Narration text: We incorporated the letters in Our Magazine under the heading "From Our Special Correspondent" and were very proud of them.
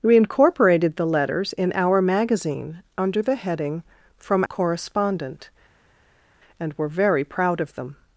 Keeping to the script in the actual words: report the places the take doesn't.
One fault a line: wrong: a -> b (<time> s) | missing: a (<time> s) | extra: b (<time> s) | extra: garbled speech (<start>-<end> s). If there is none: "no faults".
missing: Our Special (4.4 s)